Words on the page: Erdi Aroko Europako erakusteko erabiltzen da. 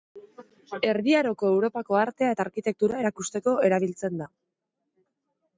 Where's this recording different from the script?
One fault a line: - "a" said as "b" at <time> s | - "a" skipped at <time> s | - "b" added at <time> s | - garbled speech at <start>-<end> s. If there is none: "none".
- "artea eta arkitektura" added at 2.0 s